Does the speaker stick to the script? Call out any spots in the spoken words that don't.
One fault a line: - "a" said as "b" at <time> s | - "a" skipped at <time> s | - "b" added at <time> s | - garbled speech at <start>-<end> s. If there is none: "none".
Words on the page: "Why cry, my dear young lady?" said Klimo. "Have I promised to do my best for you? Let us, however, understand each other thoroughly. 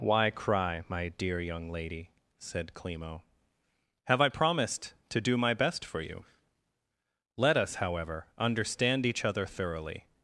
none